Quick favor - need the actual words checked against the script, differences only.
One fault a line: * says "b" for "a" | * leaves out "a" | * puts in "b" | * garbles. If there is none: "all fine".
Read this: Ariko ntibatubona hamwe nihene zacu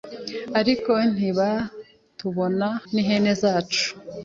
* leaves out "hamwe"